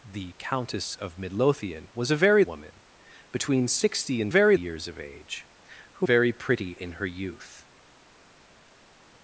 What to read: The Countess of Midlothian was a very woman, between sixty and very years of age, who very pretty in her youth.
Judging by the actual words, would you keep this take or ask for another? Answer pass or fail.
pass